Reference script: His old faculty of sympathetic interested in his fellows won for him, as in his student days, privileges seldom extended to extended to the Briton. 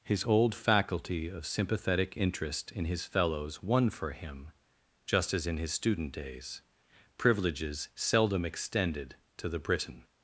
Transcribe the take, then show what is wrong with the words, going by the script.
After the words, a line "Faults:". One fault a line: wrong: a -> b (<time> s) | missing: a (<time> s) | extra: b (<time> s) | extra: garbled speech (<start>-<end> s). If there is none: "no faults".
His old faculty of sympathetic interest in his fellows won for him, just as in his student days, privileges seldom extended to the Briton.
Faults:
wrong: interested -> interest (2.2 s)
extra: just (5.1 s)
missing: extended to (9.5 s)